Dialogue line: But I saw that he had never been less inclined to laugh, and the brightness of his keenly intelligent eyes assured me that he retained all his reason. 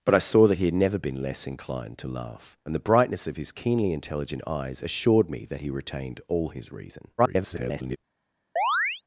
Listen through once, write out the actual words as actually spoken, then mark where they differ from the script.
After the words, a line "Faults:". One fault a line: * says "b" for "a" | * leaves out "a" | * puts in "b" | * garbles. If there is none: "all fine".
But I saw that he had never been less inclined to laugh, and the brightness of his keenly intelligent eyes assured me that he retained all his reason. [garbled]
Faults:
* garbles